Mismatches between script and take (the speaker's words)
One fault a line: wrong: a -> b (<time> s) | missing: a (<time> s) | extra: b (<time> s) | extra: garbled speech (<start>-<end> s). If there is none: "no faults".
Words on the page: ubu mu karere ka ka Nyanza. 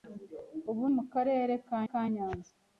no faults